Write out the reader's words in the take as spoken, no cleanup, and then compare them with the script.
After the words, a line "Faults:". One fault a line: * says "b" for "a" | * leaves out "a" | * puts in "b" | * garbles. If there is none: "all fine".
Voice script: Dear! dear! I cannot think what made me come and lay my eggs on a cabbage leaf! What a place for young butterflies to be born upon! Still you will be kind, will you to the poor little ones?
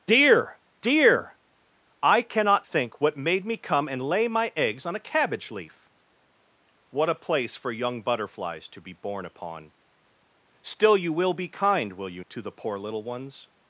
Dear! dear! I cannot think what made me come and lay my eggs on a cabbage leaf! What a place for young butterflies to be born upon! Still you will be kind, will you to the poor little ones?
Faults:
all fine